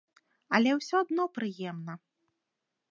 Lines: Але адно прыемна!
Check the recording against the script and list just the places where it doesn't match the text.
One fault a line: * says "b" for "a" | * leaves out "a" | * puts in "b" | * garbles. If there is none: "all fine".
* puts in "ўсё"